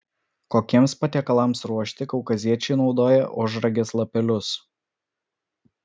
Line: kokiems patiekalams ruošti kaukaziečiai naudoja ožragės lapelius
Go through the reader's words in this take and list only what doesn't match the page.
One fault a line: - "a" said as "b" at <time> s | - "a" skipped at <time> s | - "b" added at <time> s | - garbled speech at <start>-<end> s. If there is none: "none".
none